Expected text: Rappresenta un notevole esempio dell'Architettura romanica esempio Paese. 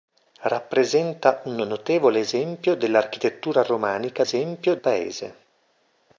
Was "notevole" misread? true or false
false